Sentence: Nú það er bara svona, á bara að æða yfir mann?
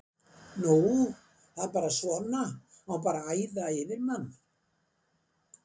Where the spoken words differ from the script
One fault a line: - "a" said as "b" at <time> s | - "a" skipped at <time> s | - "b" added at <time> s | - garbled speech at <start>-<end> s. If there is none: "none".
none